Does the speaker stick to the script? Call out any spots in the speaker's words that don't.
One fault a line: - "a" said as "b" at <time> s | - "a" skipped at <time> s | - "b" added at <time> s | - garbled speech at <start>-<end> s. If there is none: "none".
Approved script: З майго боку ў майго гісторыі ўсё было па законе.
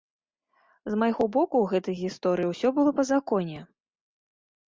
- "майго" said as "гэтай" at 1.7 s